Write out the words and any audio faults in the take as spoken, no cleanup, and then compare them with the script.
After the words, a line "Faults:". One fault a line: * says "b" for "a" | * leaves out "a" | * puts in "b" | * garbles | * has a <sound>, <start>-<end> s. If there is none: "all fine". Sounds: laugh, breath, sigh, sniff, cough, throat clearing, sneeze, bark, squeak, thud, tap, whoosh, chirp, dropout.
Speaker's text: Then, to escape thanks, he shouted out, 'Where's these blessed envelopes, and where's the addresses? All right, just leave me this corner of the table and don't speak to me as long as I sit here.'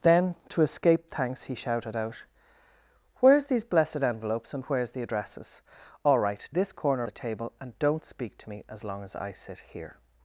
Then, to escape thanks, he shouted out, 'Where's these blessed envelopes, and where's the addresses? All right, this corner the table and don't speak to me as long as I sit here.'
Faults:
* leaves out "just leave me"
* leaves out "of"